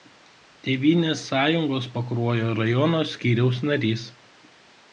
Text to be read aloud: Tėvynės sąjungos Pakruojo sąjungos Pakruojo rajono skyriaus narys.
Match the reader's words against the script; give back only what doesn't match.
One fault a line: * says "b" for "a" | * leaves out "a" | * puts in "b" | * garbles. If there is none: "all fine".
* leaves out "sąjungos Pakruojo"